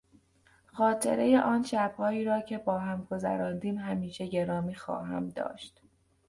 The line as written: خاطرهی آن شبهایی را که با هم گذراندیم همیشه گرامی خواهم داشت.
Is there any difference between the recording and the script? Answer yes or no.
no